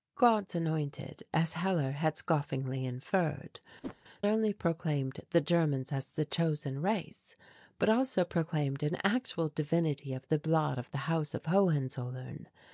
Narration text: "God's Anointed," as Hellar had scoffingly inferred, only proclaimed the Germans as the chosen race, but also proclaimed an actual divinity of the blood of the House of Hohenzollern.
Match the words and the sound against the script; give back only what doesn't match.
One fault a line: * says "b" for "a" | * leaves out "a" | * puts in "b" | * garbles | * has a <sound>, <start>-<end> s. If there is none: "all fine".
* has a whoosh, 3.8-4.0 s